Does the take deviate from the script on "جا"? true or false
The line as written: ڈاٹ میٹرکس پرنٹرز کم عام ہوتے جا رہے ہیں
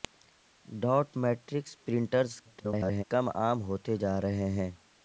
false